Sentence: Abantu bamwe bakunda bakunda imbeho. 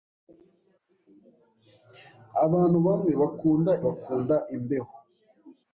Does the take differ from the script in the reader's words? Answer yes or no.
no